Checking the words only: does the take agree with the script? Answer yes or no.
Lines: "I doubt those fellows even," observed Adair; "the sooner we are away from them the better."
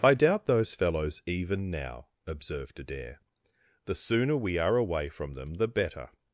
no